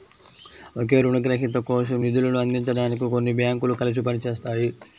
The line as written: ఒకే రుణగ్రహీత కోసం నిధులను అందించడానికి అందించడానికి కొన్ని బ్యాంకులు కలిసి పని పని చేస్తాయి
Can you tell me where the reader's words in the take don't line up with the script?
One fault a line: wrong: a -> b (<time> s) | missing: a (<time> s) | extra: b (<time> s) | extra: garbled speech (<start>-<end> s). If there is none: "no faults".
missing: అందించడానికి (3.0 s)
missing: పని (4.2 s)